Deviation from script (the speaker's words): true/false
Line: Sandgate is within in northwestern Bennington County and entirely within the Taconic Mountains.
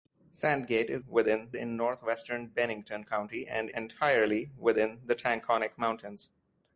false